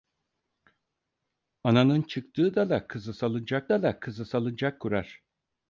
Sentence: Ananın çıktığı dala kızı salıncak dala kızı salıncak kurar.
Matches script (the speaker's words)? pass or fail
pass